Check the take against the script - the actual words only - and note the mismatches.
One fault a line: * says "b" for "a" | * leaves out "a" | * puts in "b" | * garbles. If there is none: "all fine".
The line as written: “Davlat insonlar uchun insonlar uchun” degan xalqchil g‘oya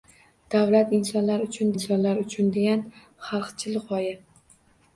all fine